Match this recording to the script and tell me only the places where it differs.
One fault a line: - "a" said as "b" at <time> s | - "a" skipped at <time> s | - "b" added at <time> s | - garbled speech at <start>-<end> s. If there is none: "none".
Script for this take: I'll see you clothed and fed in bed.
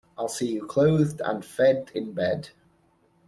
none